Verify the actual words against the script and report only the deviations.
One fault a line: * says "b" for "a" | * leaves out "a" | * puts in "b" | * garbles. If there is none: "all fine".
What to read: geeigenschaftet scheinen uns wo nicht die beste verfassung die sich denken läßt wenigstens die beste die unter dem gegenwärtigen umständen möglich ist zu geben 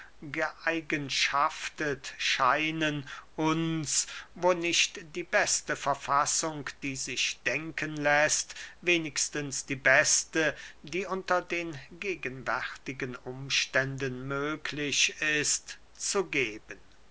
* says "den" for "dem"